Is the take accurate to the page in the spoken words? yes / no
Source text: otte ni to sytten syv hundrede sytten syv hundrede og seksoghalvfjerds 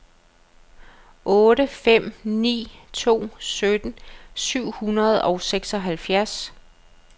no